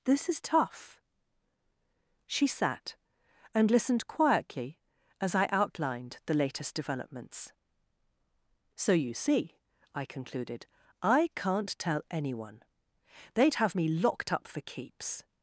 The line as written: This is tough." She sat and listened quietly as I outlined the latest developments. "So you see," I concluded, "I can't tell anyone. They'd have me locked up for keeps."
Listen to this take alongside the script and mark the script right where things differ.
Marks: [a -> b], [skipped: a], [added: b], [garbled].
This is tough." She sat and listened quietly as I outlined the latest developments. "So you see," I concluded, "I can't tell anyone. They'd have me locked up for keeps."